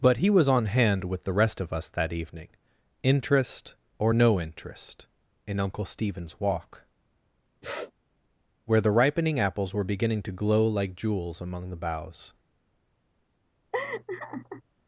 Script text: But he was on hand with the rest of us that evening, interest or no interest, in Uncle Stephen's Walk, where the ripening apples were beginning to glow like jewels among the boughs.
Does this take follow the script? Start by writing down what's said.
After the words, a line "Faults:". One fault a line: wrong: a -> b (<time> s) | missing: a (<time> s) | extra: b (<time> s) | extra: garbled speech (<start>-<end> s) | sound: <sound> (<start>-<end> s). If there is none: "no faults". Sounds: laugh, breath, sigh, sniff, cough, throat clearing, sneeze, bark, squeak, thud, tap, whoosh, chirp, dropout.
But he was on hand with the rest of us that evening, interest or no interest, in Uncle Stephen's Walk, where the ripening apples were beginning to glow like jewels among the boughs.
Faults:
sound: sniff (7.6-7.9 s)
sound: laugh (13.7-14.6 s)